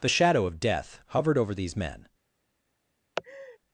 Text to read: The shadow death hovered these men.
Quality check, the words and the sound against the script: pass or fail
fail